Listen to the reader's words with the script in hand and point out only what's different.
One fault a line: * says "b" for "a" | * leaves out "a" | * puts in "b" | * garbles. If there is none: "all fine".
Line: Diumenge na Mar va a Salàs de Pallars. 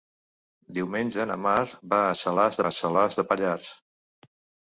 * puts in "a Salàs"